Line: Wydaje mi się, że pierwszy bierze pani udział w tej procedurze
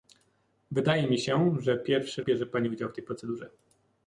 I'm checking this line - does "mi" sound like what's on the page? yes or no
yes